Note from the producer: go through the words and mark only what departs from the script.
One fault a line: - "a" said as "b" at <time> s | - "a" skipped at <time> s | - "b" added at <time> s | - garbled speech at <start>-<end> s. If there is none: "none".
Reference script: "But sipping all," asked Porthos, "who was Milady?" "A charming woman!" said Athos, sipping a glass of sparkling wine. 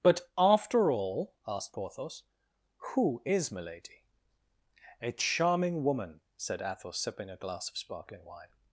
- "sipping" said as "after" at 0.4 s
- "was" said as "is" at 3.2 s